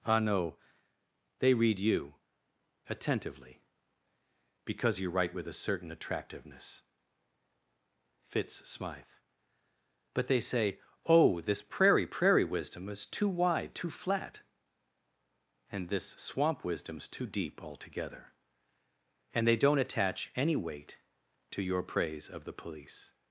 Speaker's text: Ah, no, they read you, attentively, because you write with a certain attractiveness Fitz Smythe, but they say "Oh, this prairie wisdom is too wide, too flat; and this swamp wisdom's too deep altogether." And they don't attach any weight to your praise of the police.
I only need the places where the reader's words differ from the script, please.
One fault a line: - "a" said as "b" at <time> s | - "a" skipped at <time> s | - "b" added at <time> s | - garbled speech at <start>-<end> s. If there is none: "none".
- "prairie" added at 12.1 s